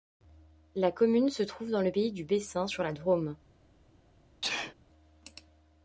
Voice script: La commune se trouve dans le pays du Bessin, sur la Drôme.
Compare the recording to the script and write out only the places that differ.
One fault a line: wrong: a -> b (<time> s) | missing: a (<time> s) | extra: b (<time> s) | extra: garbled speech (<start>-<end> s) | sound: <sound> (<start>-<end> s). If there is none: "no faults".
sound: sneeze (4.4-4.7 s)